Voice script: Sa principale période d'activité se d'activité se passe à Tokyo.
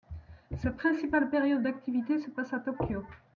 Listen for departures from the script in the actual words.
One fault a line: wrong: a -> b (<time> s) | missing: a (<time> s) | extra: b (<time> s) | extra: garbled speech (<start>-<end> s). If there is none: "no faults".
missing: d'activité se (2.3 s)